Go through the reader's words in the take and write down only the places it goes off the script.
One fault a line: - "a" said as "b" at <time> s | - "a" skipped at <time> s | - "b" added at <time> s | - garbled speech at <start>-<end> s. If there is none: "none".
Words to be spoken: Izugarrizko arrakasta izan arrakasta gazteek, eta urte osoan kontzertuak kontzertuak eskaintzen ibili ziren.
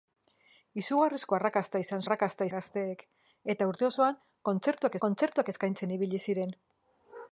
none